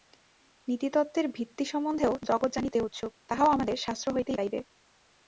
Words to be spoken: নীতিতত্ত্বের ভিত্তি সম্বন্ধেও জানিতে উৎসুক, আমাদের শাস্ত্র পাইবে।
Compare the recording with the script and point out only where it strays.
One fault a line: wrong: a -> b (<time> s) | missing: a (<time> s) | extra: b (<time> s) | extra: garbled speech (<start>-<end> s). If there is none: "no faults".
extra: জগৎ (2.2 s)
extra: তাহাও (3.3 s)
extra: হইতেই (4.2 s)